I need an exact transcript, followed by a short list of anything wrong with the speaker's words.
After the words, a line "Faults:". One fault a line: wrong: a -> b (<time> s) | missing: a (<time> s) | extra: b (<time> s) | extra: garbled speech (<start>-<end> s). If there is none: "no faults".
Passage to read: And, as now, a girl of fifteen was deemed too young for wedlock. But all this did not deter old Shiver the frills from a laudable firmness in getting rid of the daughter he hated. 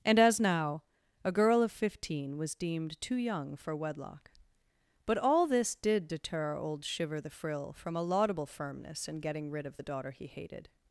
And, as now, a girl of fifteen was deemed too young for wedlock. But all this did deter old Shiver the frill from a laudable firmness in getting rid of the daughter he hated.
Faults:
missing: not (6.1 s)
wrong: frills -> frill (7.3 s)